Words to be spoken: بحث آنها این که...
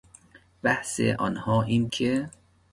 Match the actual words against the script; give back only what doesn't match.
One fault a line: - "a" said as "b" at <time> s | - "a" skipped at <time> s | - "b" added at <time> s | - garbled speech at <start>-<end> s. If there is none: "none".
none